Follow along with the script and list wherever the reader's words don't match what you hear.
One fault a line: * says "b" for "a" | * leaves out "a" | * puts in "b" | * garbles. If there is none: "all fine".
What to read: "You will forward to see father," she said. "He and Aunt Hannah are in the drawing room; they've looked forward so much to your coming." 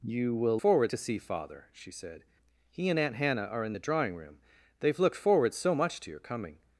all fine